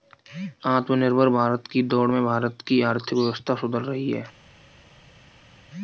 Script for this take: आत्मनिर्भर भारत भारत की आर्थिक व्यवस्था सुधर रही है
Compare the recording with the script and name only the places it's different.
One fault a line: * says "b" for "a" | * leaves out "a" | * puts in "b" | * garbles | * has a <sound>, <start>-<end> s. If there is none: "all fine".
* puts in "की दौड़ में"